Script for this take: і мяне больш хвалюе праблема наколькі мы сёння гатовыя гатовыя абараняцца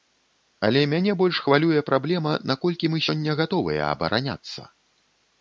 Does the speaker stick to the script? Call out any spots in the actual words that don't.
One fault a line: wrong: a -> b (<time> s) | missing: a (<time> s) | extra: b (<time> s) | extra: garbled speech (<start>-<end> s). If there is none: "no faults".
wrong: і -> але (0.7 s)
missing: гатовыя (3.8 s)